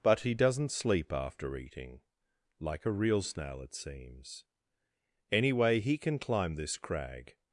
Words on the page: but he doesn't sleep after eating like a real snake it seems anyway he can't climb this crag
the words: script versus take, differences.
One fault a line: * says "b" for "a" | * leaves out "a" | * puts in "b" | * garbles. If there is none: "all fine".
* says "snail" for "snake"
* says "can" for "can't"